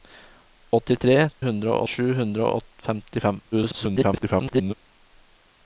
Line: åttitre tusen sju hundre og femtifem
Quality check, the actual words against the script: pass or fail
fail